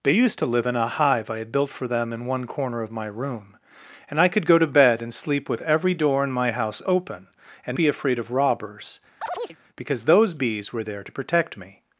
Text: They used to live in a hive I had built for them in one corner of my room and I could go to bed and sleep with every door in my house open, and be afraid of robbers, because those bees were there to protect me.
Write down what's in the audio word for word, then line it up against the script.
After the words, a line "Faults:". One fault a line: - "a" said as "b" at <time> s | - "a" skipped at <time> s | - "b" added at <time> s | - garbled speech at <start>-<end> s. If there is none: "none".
They used to live in a hive I had built for them in one corner of my room and I could go to bed and sleep with every door in my house open, and be afraid of robbers, because those bees were there to protect me.
Faults:
none